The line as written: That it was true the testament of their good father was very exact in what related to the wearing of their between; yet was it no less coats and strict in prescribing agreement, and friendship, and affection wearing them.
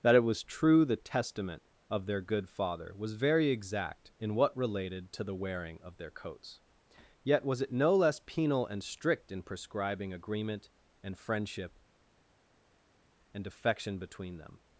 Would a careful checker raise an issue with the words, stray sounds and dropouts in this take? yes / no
yes